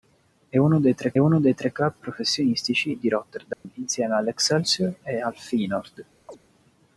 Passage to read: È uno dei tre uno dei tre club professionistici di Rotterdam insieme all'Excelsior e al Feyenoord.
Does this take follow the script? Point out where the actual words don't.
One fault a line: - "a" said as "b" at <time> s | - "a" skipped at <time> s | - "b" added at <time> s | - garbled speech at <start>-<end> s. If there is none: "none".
none